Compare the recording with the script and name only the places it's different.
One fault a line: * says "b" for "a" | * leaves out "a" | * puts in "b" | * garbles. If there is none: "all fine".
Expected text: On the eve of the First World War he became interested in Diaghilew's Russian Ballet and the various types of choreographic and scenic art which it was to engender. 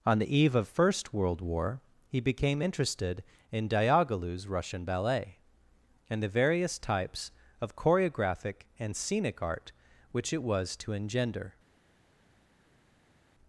* leaves out "the"